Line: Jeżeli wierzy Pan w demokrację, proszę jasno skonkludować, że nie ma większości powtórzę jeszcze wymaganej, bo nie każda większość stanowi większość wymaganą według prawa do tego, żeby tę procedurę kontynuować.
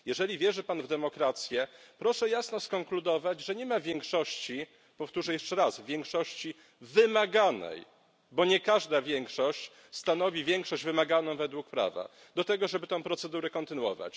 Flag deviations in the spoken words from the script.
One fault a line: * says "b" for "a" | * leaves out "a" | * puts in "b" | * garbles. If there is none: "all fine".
* puts in "raz większości"